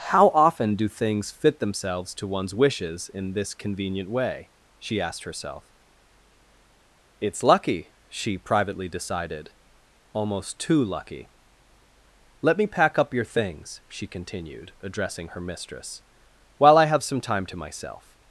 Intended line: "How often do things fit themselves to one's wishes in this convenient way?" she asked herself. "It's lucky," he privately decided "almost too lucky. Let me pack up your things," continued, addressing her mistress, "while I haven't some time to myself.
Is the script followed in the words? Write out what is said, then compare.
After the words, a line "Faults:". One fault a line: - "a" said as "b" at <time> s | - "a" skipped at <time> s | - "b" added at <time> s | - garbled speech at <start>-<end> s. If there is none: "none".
"How often do things fit themselves to one's wishes in this convenient way?" she asked herself. "It's lucky," she privately decided "almost too lucky. Let me pack up your things," she continued, addressing her mistress, "while I have some time to myself.
Faults:
- "he" said as "she" at 8.1 s
- "she" added at 13.9 s
- "haven't" said as "have" at 16.9 s